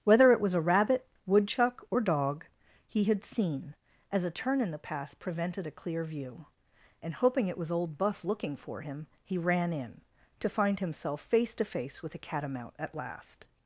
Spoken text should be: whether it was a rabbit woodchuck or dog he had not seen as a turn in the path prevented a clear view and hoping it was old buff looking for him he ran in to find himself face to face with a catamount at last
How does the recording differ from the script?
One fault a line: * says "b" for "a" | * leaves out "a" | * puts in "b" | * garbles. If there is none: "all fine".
* leaves out "not"